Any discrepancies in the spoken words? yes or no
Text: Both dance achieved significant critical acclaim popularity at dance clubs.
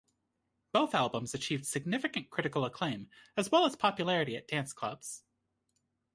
yes